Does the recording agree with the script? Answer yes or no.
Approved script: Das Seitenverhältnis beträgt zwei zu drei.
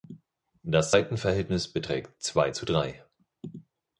yes